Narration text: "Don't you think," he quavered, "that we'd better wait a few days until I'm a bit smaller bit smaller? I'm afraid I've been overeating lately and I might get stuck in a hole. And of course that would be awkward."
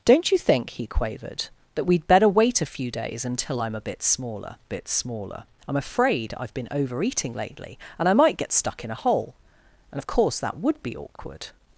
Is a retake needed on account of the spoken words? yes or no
no